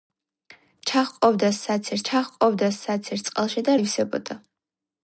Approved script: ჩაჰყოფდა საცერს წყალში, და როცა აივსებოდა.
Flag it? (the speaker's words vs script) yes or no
yes